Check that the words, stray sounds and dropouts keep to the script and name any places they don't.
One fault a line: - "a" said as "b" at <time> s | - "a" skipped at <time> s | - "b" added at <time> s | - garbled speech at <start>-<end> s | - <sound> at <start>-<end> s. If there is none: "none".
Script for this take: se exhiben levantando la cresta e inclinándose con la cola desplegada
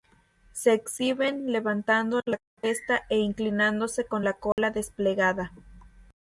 - dropout at 4.5-4.6 s